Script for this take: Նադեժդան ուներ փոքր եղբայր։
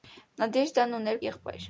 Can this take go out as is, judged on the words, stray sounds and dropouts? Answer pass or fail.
fail